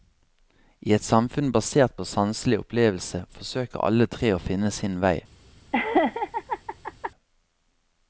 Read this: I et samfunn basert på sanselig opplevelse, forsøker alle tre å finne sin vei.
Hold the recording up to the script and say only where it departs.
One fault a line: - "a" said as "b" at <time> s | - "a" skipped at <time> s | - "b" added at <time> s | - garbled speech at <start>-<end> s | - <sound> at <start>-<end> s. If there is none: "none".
- laugh at 5.7-7.1 s